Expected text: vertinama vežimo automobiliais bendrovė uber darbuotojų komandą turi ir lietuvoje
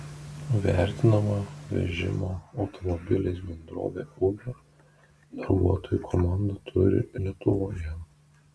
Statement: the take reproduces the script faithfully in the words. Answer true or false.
false